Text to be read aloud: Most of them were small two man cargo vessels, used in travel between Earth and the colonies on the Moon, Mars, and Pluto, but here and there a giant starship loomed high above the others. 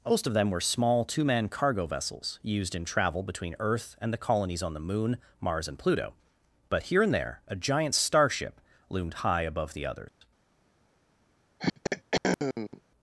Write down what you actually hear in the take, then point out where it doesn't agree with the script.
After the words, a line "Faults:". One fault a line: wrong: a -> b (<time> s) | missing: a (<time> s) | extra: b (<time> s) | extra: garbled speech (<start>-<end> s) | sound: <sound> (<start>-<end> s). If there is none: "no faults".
Most of them were small two man cargo vessels, used in travel between Earth and the colonies on the Moon, Mars, and Pluto, but here and there a giant starship loomed high above the others.
Faults:
sound: dropout (10.1-10.2 s)
sound: throat clearing (11.6-12.8 s)